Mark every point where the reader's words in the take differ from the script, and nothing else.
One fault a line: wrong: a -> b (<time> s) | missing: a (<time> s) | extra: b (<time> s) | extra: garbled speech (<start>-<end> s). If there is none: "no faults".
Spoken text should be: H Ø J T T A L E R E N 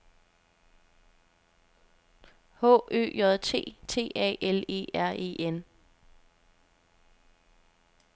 no faults